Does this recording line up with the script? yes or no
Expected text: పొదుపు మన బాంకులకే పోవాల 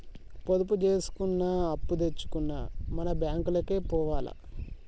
no